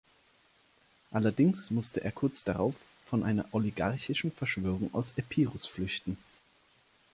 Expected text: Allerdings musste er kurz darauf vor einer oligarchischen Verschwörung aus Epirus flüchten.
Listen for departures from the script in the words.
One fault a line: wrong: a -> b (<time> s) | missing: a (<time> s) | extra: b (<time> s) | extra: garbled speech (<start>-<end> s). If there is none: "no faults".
no faults